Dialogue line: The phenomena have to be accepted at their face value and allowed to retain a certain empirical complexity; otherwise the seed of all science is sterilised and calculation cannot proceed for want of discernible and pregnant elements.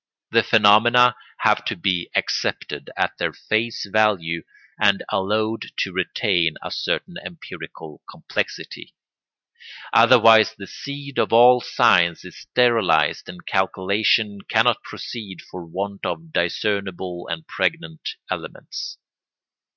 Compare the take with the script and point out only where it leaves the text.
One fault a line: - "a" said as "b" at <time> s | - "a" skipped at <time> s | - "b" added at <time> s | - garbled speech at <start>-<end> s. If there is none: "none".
none